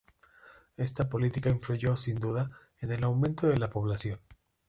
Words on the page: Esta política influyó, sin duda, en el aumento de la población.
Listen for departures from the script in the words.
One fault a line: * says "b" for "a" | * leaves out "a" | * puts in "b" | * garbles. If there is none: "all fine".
all fine